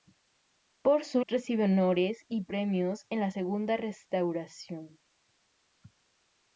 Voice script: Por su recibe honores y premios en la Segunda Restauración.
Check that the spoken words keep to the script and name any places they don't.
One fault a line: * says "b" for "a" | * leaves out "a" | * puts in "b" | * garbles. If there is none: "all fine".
all fine